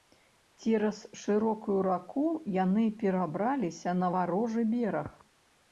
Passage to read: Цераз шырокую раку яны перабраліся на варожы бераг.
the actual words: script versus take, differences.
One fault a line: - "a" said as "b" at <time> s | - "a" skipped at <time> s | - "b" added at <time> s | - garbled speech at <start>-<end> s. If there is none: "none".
none